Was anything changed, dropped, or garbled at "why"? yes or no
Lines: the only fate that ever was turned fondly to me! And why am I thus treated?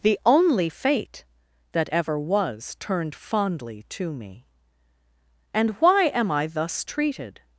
no